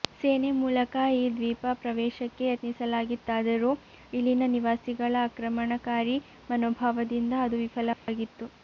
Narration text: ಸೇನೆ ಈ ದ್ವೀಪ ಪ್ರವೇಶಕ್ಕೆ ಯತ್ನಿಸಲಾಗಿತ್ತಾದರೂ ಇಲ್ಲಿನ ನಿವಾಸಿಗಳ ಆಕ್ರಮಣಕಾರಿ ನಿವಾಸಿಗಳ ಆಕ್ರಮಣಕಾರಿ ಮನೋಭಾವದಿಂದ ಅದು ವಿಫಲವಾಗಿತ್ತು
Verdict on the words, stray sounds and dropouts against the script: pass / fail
fail